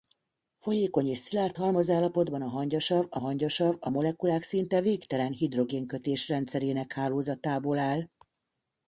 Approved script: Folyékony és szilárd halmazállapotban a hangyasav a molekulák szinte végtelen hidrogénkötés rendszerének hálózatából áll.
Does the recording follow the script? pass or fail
fail